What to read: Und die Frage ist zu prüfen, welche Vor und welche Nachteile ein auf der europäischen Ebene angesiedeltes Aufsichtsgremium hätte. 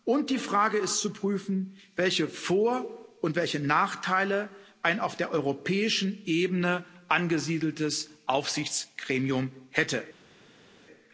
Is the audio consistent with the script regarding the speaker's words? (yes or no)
yes